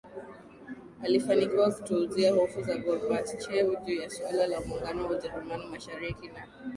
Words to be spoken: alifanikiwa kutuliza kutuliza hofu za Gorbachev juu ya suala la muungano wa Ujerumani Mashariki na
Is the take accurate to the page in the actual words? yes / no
no